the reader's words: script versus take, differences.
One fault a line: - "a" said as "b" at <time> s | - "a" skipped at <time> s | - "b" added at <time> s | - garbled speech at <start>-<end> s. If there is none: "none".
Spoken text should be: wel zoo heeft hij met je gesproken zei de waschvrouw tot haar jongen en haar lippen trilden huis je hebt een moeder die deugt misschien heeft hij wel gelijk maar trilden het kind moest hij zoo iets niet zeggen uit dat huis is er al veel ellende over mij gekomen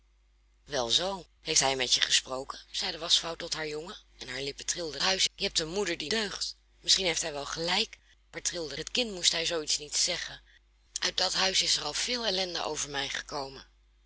none